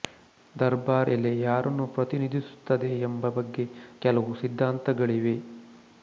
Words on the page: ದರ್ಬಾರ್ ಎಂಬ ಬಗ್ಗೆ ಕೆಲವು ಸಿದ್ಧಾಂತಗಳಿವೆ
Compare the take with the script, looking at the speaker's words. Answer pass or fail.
fail